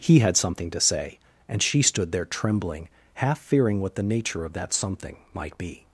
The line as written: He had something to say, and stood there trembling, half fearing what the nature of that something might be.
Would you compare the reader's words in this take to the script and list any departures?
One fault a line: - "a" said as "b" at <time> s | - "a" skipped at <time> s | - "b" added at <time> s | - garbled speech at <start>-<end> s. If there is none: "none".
- "she" added at 1.6 s